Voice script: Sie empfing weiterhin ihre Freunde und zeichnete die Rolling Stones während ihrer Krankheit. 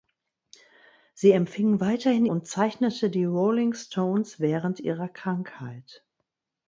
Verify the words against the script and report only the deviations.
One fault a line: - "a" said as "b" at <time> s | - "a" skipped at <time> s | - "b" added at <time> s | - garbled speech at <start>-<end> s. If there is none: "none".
- "ihre Freunde" skipped at 2.2 s